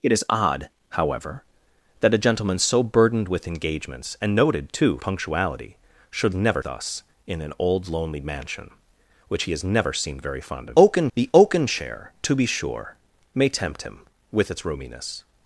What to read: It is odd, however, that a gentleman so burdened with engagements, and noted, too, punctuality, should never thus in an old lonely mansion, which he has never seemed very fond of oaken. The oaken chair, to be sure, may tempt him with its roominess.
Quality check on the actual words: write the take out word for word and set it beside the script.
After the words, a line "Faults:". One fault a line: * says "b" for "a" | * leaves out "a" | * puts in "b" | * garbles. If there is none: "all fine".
It is odd, however, that a gentleman so burdened with engagements, and noted, too, punctuality, should never thus in an old lonely mansion, which he has never seemed very fond of oaken. The oaken chair, to be sure, may tempt him with its roominess.
Faults:
all fine